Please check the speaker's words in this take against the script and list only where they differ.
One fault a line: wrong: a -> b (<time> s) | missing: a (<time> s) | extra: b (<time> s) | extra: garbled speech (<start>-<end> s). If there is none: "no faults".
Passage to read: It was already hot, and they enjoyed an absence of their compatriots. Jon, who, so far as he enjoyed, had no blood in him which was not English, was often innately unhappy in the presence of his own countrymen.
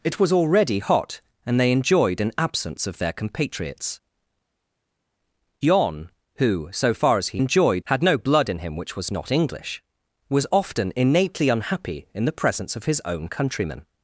no faults